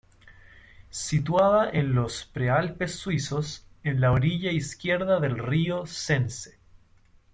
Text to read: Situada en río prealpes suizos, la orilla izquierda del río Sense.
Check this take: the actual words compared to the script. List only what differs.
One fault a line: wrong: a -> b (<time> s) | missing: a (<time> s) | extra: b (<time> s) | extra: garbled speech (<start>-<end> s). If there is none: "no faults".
wrong: río -> los (1.9 s)
extra: en (3.8 s)